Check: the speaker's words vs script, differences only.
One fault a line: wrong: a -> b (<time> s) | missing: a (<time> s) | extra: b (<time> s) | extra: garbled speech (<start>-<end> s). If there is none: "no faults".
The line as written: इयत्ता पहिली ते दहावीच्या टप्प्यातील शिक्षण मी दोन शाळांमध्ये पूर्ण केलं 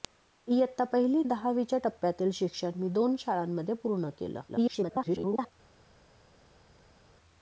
missing: ते (1.2 s)
extra: garbled speech (4.5-5.5 s)